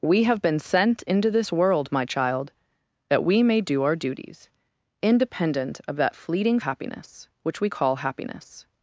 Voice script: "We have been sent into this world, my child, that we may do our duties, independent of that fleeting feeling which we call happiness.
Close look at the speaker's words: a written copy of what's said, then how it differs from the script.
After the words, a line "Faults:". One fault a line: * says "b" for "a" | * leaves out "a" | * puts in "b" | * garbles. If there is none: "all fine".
"We have been sent into this world, my child, that we may do our duties, independent of that fleeting happiness which we call happiness.
Faults:
* says "happiness" for "feeling"